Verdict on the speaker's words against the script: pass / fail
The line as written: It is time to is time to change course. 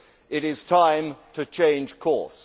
fail